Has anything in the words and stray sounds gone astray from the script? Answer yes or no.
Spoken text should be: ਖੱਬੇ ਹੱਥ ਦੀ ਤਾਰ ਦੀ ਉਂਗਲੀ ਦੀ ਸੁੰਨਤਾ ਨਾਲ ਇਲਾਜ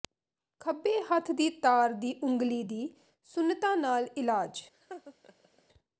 yes